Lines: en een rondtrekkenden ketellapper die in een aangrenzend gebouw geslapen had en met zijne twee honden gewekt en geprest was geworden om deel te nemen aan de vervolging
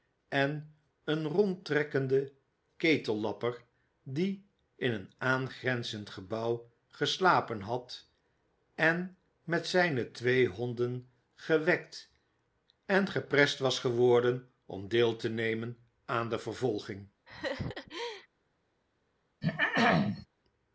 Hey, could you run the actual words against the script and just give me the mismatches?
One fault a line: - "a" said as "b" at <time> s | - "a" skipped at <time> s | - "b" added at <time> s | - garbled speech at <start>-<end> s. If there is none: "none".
none